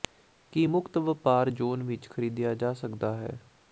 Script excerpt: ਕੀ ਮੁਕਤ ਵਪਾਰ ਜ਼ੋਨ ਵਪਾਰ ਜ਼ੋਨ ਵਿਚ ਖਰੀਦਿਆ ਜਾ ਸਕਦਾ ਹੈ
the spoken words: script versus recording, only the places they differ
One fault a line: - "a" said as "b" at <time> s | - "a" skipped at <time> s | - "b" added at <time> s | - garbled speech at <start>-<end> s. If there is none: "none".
- "ਵਪਾਰ ਜ਼ੋਨ" skipped at 1.8 s